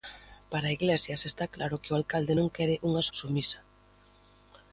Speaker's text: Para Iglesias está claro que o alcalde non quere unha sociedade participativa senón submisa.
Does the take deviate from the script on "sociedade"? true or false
true